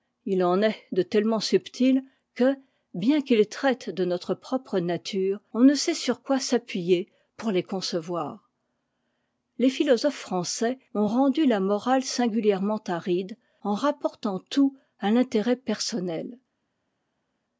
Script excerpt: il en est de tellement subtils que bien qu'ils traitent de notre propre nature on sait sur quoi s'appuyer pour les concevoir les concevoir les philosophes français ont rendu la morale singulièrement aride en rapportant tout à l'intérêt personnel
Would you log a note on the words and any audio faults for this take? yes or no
yes